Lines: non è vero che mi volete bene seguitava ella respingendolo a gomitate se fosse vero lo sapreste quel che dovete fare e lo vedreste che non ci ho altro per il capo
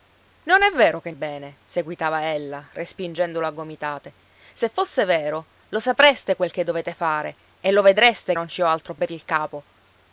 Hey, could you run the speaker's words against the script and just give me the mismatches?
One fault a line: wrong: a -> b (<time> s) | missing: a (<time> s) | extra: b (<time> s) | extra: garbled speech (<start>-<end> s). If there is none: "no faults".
missing: mi volete (1.1 s)
missing: che (8.3 s)